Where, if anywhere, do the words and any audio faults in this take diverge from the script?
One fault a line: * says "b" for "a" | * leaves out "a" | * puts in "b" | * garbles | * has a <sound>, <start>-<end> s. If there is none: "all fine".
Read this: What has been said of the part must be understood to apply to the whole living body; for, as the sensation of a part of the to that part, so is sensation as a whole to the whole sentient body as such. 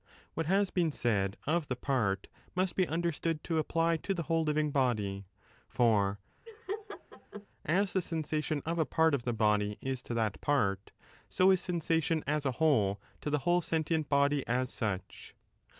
* has a laugh, 6.5-7.5 s
* puts in "body is"